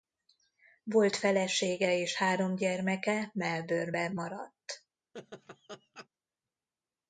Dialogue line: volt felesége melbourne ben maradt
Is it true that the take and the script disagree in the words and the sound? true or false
true